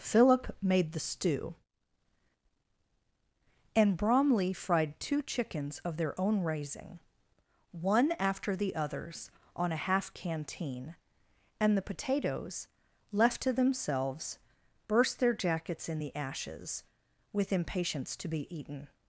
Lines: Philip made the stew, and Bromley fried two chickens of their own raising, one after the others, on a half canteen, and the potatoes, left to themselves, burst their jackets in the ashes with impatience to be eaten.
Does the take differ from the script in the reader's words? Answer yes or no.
no